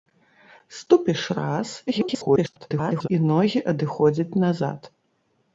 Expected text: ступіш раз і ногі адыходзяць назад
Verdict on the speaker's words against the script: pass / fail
fail